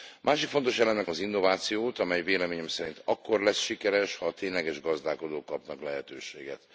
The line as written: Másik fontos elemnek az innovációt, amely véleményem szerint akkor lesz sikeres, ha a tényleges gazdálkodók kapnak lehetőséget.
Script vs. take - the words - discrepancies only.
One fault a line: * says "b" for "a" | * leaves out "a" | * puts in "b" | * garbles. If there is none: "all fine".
all fine